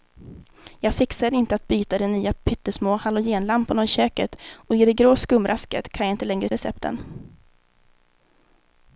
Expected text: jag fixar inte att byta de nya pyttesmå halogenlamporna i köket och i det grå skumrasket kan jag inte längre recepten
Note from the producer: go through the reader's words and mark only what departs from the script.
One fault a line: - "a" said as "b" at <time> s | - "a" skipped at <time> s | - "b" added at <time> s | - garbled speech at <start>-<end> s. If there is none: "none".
none